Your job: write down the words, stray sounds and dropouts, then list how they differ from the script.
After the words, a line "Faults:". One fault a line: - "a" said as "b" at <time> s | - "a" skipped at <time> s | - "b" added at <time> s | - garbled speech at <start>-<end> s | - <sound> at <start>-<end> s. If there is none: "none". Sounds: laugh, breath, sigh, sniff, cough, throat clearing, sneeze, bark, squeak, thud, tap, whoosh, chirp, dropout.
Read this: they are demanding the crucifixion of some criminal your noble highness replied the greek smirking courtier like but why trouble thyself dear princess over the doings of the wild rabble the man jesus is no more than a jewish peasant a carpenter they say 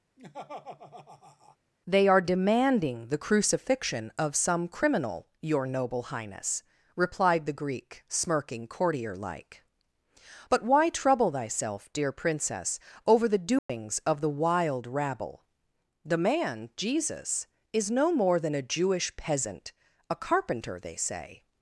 they are demanding the crucifixion of some criminal your noble highness replied the greek smirking courtier like but why trouble thyself dear princess over the doings of the wild rabble the man jesus is no more than a jewish peasant a carpenter they say
Faults:
- laugh at 0.2-1.6 s
- dropout at 13.6-13.7 s